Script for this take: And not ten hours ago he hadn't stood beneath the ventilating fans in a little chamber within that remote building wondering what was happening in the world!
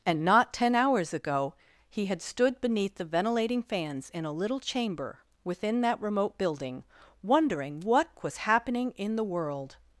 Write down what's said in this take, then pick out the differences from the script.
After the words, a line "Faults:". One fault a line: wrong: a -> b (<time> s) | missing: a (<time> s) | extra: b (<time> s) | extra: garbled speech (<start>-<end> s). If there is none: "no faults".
And not ten hours ago he had stood beneath the ventilating fans in a little chamber within that remote building wondering what was happening in the world!
Faults:
wrong: hadn't -> had (2.1 s)